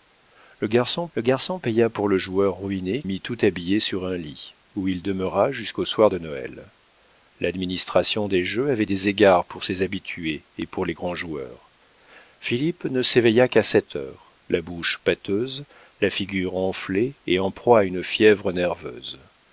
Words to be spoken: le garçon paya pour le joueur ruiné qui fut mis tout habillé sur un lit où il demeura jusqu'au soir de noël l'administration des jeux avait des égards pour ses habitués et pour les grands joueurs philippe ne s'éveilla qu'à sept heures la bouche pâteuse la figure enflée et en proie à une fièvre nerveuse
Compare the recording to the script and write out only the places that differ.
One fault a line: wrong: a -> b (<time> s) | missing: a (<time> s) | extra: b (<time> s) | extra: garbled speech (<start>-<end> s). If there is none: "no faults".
extra: le garçon (1.1 s)
missing: qui fut (3.0 s)